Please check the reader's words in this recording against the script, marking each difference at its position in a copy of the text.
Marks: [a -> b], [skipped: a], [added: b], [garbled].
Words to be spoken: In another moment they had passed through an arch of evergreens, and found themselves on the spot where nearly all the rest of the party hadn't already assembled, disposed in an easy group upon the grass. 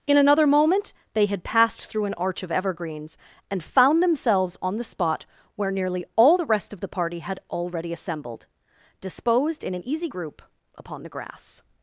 In another moment they had passed through an arch of evergreens, and found themselves on the spot where nearly all the rest of the party [hadn't -> had] already assembled, disposed in an easy group upon the grass.